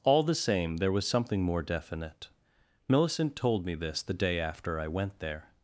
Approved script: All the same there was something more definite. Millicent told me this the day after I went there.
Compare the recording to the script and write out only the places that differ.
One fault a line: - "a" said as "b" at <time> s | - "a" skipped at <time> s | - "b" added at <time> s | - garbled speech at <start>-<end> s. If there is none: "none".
none